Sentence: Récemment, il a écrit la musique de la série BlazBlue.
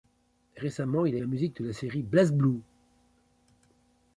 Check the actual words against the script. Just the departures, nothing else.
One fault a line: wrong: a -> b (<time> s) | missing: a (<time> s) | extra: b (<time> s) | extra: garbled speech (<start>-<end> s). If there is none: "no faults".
missing: écrit (1.2 s)